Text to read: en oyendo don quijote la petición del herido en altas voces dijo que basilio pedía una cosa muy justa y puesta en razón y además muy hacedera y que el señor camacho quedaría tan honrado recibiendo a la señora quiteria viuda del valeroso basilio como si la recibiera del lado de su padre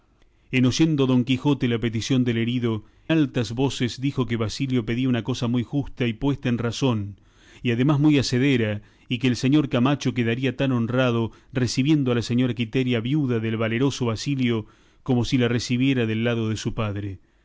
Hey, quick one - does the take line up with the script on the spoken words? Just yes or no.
no